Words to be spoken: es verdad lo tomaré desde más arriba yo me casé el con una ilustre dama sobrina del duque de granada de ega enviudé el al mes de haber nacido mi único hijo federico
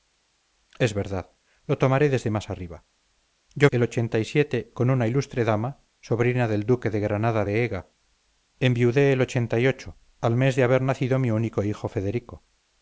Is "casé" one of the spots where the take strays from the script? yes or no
yes